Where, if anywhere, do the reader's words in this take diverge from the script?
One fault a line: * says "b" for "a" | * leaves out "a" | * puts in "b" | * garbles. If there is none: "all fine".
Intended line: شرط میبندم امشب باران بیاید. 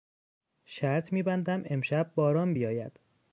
all fine